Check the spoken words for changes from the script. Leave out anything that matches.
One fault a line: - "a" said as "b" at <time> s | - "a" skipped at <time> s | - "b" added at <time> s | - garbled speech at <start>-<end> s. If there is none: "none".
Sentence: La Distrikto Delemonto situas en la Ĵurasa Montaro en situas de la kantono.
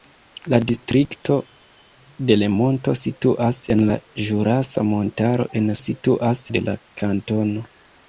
none